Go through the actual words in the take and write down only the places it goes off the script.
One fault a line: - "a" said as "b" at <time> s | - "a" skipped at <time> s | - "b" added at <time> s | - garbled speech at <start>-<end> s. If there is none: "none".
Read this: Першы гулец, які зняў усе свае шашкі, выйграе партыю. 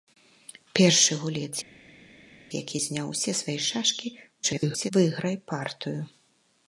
- garbled speech at 4.4-4.9 s